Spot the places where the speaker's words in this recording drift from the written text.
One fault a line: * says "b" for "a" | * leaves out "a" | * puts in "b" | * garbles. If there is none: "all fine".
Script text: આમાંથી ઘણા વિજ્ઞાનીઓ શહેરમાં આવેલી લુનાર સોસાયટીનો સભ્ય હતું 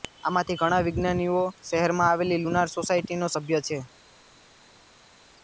* says "છે" for "હતું"